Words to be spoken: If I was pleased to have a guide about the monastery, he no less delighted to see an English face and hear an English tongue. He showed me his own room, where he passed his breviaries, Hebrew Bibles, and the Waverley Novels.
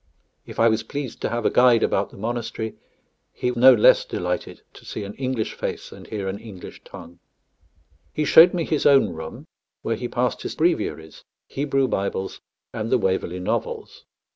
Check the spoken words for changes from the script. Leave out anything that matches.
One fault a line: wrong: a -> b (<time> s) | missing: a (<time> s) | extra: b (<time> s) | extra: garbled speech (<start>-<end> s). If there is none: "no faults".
no faults